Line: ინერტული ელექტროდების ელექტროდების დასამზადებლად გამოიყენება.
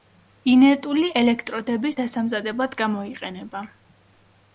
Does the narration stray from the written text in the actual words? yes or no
yes